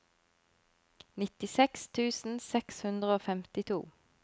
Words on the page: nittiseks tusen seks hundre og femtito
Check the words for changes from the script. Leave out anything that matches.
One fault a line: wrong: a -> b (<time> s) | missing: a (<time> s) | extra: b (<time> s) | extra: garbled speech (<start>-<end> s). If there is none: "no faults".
no faults